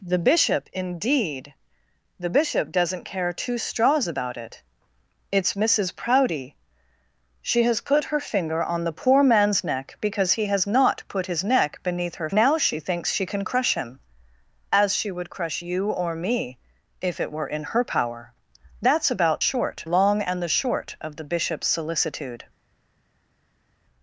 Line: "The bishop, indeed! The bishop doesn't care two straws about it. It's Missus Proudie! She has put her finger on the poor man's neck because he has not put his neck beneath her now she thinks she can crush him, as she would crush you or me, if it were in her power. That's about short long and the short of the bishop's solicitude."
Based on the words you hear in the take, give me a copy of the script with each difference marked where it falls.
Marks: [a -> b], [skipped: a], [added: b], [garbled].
"The bishop, indeed! The bishop doesn't care two straws about it. It's Missus Proudie! She has put her finger on the poor man's neck because he has not put his neck beneath her now she thinks she can crush him, as she would crush you or me, if it were in her power. That's about short long and the short of the bishop's solicitude."